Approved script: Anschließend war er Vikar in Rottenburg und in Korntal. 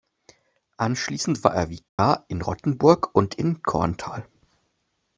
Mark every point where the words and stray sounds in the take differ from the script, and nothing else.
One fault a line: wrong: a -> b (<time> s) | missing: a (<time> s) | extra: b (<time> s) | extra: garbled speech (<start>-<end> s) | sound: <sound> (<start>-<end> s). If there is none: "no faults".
sound: dropout (1.9-2.0 s)